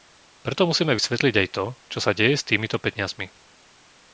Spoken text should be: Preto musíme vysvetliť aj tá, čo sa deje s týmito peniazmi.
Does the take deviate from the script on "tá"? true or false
true